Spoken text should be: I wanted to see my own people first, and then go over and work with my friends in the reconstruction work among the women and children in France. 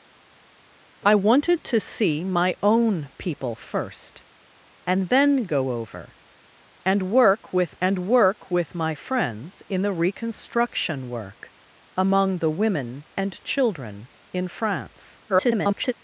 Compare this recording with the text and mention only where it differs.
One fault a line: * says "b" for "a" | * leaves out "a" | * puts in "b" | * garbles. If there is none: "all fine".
* puts in "and work with"
* garbles